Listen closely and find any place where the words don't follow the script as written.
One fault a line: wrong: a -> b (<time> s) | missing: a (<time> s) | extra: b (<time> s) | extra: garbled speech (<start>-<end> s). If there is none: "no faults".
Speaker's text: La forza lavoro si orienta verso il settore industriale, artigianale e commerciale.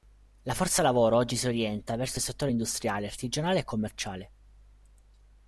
extra: oggi (1.2 s)